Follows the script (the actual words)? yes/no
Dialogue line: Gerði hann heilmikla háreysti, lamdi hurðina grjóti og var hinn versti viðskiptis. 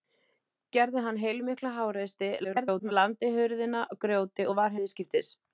no